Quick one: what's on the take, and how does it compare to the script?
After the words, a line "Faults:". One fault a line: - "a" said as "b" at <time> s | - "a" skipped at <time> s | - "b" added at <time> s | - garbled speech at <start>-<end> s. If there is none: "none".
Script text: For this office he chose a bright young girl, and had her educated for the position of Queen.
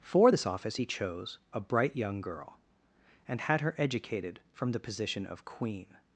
For this office he chose a bright young girl, and had her educated from the position of Queen.
Faults:
- "for" said as "from" at 4.5 s